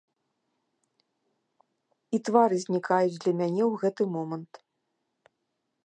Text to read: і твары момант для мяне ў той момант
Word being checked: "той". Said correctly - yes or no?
no